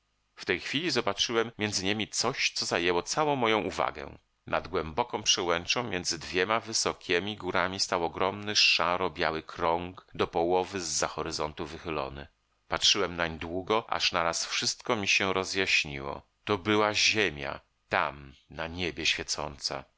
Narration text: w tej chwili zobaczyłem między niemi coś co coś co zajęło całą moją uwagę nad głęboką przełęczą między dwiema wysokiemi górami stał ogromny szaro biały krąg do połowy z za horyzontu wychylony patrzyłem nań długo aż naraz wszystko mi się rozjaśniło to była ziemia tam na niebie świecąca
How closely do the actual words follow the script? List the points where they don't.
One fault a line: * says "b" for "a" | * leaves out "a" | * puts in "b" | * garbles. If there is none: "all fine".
* leaves out "coś co"